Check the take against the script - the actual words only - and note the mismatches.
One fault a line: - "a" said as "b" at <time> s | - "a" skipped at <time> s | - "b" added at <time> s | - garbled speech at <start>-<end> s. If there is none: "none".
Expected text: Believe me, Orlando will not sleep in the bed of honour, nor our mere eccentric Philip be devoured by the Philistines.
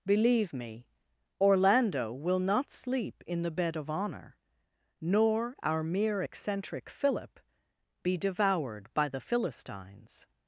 none